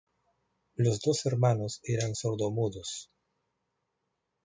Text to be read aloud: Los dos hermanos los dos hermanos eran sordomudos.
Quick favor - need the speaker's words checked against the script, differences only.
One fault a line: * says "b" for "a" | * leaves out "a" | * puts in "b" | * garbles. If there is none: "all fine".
* leaves out "los dos hermanos"